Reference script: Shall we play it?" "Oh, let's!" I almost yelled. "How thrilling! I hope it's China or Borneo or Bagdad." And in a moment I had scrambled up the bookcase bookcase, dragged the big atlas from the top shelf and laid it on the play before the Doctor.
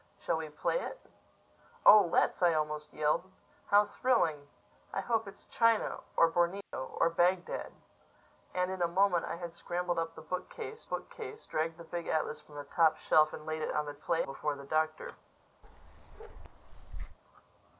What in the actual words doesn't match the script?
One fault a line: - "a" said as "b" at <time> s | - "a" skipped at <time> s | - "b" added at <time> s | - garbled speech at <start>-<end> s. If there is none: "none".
none